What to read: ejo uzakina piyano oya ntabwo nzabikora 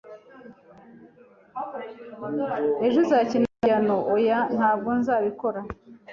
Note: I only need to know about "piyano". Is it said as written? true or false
true